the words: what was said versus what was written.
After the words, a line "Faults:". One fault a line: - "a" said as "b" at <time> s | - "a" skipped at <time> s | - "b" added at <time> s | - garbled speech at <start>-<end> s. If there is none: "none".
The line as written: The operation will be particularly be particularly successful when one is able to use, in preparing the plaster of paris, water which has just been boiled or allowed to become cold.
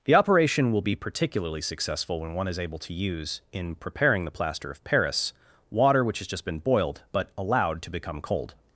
The operation will be particularly successful when one is able to use, in preparing the plaster of paris, water which has just been boiled but allowed to become cold.
Faults:
- "be particularly" skipped at 1.6 s
- "or" said as "but" at 7.1 s